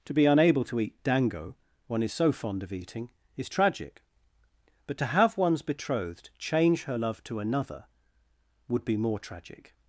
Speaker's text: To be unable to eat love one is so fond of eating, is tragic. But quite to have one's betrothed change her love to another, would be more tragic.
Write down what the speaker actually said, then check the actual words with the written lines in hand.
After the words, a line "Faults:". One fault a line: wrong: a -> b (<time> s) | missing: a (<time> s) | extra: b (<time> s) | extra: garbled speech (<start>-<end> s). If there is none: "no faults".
To be unable to eat dango one is so fond of eating, is tragic. But to have one's betrothed change her love to another, would be more tragic.
Faults:
wrong: love -> dango (1.0 s)
missing: quite (5.0 s)